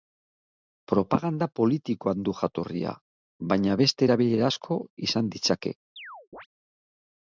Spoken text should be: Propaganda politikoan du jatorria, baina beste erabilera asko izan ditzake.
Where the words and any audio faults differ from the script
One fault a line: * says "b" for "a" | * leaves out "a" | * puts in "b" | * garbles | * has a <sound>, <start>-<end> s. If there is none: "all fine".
* has a chirp, 6.0-6.5 s